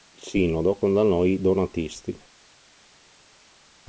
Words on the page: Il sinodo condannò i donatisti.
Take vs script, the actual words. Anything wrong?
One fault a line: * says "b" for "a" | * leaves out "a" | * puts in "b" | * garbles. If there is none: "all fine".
all fine